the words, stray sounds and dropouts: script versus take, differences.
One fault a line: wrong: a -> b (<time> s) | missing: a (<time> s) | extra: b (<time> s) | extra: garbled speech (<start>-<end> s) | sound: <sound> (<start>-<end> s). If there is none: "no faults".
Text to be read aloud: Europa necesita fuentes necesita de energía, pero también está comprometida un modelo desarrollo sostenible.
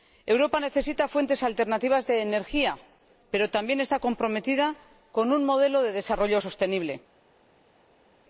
wrong: necesita -> alternativas (1.4 s)
extra: con (5.1 s)
extra: de (5.8 s)